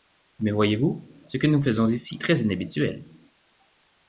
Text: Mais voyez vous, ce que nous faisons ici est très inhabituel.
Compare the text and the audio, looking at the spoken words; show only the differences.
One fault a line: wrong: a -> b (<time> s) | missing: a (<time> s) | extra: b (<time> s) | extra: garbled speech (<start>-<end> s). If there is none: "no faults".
missing: est (2.2 s)